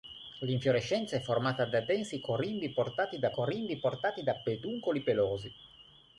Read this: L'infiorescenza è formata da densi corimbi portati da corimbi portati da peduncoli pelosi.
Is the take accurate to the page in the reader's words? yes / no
yes